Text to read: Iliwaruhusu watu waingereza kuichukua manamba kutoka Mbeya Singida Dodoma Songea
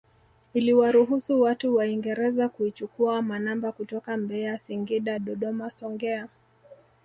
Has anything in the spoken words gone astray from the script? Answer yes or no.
no